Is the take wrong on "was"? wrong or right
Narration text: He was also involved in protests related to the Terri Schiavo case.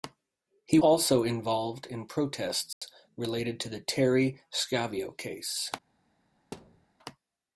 wrong